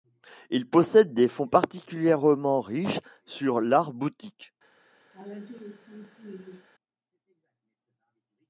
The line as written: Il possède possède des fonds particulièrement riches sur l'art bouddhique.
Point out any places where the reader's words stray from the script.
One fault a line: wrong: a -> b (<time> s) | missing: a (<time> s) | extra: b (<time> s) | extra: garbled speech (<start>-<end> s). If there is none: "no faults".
missing: possède (1.1 s)